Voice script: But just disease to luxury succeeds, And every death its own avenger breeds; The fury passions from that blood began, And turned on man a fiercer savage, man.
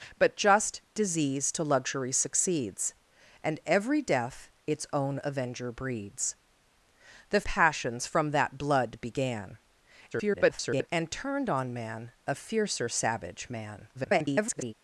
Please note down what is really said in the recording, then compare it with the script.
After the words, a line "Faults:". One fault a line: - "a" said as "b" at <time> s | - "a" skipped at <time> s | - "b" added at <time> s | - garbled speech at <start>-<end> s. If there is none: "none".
But just disease to luxury succeeds, And every death its own avenger breeds; The passions from that blood began, [garbled] And turned on man a fiercer savage, man. [garbled]
Faults:
- "fury" skipped at 7.4 s
- garbled speech at 10.1-10.9 s
- garbled speech at 13.9-14.7 s